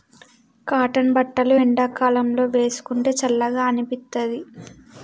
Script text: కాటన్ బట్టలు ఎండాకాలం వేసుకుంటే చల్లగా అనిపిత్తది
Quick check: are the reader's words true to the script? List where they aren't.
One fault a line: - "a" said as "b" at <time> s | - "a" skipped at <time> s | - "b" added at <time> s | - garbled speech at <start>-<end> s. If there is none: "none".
- "లో" added at 2.3 s